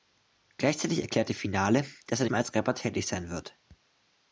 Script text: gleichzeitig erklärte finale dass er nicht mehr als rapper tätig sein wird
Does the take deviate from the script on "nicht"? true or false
true